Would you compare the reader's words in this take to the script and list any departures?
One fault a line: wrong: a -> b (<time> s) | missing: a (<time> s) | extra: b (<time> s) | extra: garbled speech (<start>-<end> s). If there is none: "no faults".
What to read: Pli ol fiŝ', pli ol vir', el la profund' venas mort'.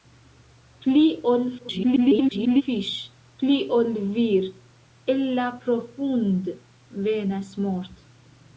extra: garbled speech (1.6-2.6 s)